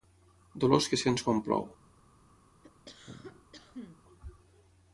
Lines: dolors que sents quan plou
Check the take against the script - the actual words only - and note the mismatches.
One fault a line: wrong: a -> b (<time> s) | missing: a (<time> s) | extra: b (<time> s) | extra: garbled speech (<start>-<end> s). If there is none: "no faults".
no faults